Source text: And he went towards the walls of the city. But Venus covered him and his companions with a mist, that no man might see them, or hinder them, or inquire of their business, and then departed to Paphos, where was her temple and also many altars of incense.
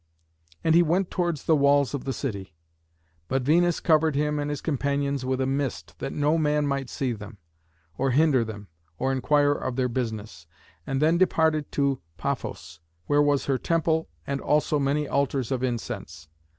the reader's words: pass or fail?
pass